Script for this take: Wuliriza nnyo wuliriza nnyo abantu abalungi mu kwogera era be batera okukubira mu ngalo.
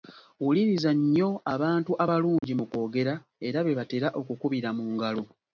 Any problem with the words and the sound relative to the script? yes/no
yes